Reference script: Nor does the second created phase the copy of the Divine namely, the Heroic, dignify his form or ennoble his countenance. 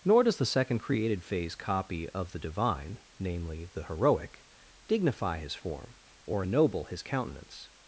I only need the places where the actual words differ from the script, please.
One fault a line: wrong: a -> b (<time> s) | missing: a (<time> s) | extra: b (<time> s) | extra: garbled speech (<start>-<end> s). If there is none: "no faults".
missing: the (1.6 s)